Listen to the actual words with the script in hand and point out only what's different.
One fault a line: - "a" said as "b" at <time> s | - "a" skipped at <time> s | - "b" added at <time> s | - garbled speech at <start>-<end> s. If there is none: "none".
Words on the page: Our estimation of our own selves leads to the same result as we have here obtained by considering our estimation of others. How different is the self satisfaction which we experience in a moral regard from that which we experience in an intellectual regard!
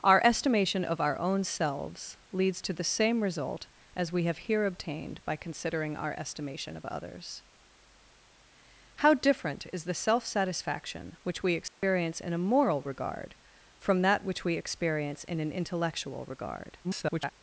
- garbled speech at 16.8-17.3 s